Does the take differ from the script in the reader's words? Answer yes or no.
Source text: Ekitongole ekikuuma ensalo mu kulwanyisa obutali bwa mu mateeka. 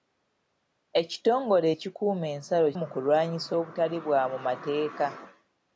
no